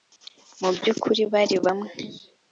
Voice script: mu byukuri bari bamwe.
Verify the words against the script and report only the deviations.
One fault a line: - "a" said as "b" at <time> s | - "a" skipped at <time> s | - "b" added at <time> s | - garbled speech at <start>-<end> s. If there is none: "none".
none